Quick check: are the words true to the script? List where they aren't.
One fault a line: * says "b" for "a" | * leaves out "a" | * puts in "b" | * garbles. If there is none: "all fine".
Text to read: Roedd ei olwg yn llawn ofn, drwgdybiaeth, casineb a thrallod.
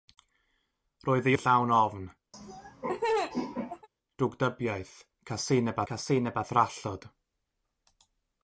* leaves out "olwg"
* puts in "casineb"